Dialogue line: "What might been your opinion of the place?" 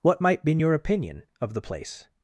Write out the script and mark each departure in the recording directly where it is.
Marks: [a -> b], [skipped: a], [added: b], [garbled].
"What might been your opinion of the place?"